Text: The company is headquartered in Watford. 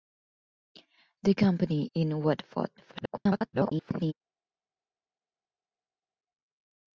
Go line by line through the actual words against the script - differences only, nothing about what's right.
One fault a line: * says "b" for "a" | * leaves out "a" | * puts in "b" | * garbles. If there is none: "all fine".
* leaves out "is headquartered"
* garbles